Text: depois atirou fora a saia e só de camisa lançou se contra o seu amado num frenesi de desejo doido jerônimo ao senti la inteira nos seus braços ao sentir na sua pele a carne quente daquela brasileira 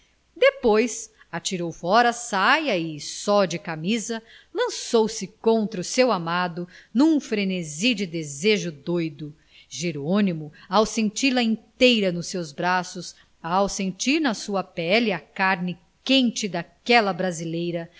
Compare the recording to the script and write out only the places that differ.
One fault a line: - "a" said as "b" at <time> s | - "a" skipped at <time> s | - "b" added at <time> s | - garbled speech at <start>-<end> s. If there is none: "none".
none